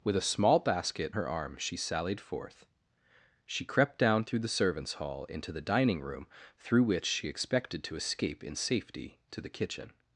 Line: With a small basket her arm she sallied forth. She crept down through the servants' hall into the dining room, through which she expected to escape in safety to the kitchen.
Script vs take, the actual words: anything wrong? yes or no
no